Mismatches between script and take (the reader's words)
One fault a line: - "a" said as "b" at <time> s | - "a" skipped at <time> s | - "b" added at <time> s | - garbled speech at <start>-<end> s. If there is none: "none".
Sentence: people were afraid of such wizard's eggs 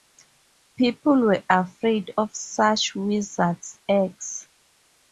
none